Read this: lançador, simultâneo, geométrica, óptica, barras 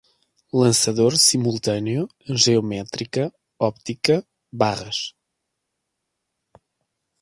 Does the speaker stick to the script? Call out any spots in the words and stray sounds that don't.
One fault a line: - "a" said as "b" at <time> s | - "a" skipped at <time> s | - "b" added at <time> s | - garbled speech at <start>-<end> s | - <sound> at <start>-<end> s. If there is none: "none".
none